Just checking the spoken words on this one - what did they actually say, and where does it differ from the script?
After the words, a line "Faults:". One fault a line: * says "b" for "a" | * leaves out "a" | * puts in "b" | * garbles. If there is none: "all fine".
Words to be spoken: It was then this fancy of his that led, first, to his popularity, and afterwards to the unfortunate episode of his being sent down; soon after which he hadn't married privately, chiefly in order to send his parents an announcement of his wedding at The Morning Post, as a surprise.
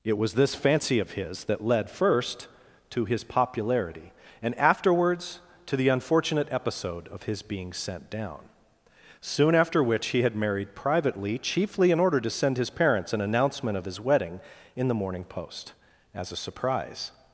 It was this fancy of his that led, first, to his popularity, and afterwards to the unfortunate episode of his being sent down; soon after which he had married privately, chiefly in order to send his parents an announcement of his wedding in The Morning Post, as a surprise.
Faults:
* leaves out "then"
* says "had" for "hadn't"
* says "in" for "at"